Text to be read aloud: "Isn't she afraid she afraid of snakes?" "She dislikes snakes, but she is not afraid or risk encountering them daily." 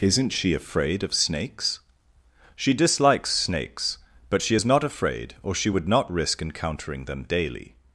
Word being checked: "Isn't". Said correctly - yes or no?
yes